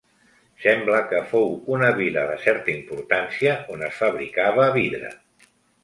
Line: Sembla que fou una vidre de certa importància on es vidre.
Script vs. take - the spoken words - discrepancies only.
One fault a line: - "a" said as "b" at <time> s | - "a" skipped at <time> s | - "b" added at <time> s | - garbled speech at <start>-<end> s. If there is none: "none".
- "vidre" said as "vila" at 2.0 s
- "fabricava" added at 4.0 s